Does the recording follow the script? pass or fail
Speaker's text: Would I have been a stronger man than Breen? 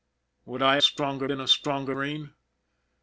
fail